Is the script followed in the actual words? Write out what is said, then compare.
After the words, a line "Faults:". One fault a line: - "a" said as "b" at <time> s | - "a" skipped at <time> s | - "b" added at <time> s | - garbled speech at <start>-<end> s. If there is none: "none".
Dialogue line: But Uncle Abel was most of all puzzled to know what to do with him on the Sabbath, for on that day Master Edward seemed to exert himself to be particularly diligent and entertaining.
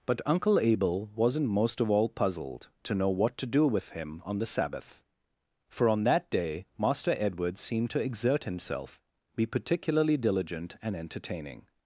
But Uncle Abel wasn't most of all puzzled to know what to do with him on the Sabbath, for on that day Master Edward seemed to exert himself be particularly diligent and entertaining.
Faults:
- "was" said as "wasn't" at 1.1 s
- "to" skipped at 9.0 s